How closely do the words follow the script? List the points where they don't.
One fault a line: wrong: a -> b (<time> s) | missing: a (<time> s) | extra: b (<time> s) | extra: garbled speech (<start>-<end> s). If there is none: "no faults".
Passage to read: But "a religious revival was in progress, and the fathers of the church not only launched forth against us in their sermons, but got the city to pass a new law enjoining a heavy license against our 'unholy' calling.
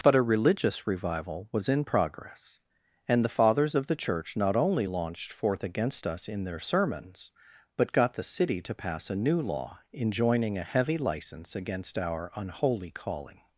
no faults